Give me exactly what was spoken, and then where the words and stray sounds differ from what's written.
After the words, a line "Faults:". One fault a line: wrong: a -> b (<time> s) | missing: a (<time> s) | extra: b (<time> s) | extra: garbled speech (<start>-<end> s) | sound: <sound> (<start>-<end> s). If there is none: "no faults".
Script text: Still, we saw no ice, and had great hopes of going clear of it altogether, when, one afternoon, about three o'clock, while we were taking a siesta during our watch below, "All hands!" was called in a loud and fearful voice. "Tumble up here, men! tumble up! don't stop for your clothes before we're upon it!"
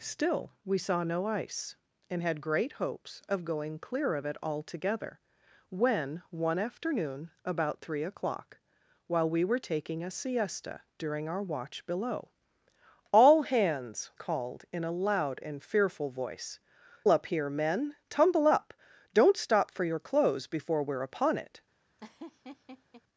Still, we saw no ice, and had great hopes of going clear of it altogether, when, one afternoon, about three o'clock, while we were taking a siesta during our watch below, "All hands!" called in a loud and fearful voice. "Up here, men! tumble up! don't stop for your clothes before we're upon it!"
Faults:
missing: was (14.1 s)
missing: Tumble (16.6 s)
sound: laugh (22.0-23.0 s)